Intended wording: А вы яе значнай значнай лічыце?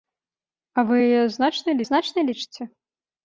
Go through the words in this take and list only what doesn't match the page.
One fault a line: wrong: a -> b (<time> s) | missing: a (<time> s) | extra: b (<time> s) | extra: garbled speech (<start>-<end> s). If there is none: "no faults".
no faults